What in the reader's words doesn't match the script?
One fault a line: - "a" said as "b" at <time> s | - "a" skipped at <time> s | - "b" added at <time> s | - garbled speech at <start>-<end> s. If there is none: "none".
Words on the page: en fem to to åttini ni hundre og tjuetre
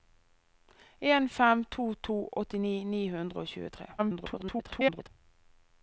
- garbled speech at 4.0-5.1 s